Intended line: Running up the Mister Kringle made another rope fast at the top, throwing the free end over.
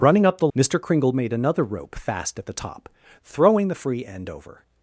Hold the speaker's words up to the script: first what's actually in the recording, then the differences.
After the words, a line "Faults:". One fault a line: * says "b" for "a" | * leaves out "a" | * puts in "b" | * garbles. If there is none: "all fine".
Running up the Mister Kringle made another rope fast at the top, throwing the free end over.
Faults:
all fine